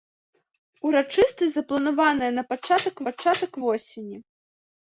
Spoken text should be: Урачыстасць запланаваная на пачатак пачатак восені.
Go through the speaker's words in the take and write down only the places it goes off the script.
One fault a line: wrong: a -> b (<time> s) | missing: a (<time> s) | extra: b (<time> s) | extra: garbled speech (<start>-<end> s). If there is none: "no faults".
no faults